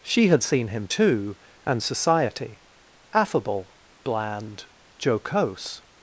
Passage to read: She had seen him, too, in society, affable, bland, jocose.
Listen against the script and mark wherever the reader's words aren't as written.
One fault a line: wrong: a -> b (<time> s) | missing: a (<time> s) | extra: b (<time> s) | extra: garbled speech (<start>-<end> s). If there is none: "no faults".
wrong: in -> and (1.7 s)